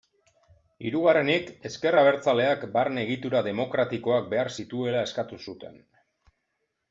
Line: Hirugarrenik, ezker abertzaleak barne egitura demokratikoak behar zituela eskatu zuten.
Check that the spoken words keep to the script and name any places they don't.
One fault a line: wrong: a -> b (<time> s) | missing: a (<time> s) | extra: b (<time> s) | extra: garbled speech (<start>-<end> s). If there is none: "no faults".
no faults